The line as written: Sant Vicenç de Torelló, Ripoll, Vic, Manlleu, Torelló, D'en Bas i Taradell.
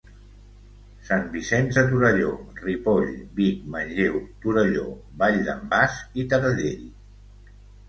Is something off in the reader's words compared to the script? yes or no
yes